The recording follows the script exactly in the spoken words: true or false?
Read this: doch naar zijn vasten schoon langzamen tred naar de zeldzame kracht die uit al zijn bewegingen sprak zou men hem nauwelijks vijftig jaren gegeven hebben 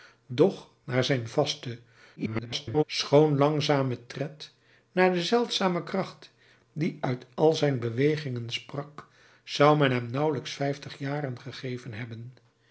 false